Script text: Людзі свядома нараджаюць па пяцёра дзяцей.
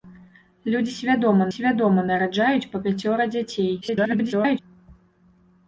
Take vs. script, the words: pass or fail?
fail